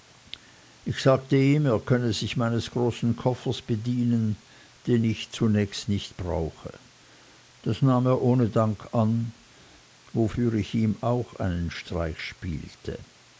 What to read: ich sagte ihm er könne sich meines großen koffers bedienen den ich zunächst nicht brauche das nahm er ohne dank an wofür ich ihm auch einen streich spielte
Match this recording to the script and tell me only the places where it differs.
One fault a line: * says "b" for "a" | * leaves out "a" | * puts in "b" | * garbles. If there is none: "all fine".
all fine